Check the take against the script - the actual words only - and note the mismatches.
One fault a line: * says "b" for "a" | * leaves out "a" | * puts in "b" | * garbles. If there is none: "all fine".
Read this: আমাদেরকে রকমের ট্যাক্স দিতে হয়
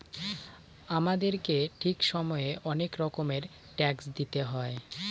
* puts in "ঠিক সময়ে অনেক"